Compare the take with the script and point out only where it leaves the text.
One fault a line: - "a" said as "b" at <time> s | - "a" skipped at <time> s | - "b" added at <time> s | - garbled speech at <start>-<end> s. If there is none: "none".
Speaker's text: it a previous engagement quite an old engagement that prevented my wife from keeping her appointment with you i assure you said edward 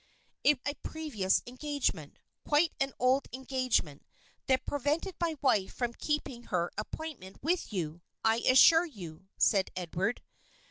none